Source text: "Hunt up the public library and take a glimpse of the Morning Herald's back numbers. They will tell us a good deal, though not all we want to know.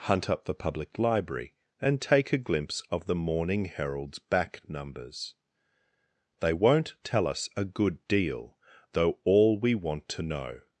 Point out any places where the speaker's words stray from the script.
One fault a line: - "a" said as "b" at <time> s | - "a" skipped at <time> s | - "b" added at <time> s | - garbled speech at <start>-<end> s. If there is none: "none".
- "will" said as "won't" at 6.5 s
- "not" skipped at 9.2 s